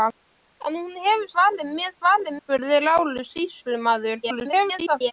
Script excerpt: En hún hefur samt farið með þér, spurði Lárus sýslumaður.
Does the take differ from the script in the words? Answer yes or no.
yes